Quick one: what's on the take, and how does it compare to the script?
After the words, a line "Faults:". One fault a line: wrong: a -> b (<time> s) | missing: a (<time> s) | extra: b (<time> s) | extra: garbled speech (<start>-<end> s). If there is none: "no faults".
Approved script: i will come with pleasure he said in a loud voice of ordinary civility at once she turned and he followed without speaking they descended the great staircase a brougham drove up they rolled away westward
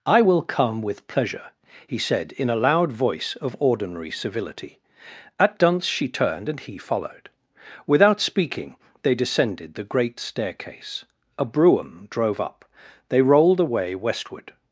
i will come with pleasure he said in a loud voice of ordinary civility at dunce she turned and he followed without speaking they descended the great staircase a brougham drove up they rolled away westward
Faults:
wrong: once -> dunce (5.6 s)